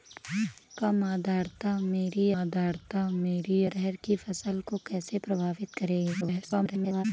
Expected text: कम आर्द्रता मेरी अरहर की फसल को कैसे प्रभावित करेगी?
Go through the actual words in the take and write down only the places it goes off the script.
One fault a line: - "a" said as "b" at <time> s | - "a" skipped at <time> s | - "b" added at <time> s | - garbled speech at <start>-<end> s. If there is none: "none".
- "आर्द्रता मेरी" added at 2.3 s
- garbled speech at 6.2-7.1 s